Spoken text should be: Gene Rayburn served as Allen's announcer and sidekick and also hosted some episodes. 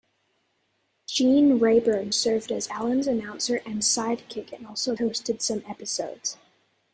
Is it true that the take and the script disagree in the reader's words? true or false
false